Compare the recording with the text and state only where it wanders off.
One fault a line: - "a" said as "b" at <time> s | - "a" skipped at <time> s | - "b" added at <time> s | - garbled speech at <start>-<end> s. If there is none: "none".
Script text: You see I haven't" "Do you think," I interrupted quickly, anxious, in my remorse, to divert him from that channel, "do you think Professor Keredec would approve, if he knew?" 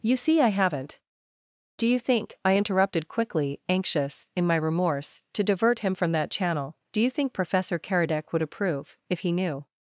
none